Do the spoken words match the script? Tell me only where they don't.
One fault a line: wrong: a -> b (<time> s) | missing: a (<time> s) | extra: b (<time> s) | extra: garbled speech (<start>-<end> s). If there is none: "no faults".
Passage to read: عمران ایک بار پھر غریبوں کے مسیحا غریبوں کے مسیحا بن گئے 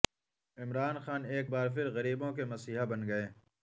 extra: خان (1.0 s)
missing: غریبوں کے مسیحا (2.8 s)